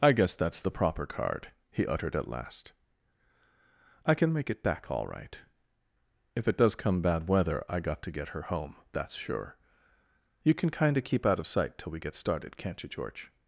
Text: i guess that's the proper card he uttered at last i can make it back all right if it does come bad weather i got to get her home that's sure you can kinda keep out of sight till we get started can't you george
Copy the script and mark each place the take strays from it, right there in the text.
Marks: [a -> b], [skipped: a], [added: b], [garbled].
i guess that's the proper card he uttered at last i can make it back all right if it does come bad weather i got to get her home that's sure you can kinda keep out of sight till we get started can't you george